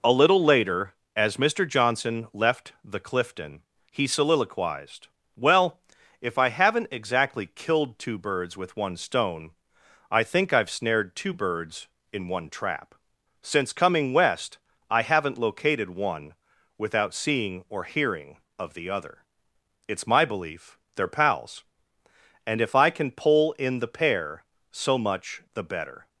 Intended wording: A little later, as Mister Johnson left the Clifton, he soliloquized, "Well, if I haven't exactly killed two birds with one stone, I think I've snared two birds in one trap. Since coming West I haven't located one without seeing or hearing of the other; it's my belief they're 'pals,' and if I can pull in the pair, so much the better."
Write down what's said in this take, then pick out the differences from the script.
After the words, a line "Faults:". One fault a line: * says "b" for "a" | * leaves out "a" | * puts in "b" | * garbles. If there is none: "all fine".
A little later, as Mister Johnson left the Clifton, he soliloquized, "Well, if I haven't exactly killed two birds with one stone, I think I've snared two birds in one trap. Since coming West I haven't located one without seeing or hearing of the other; it's my belief they're 'pals,' and if I can pull in the pair, so much the better."
Faults:
all fine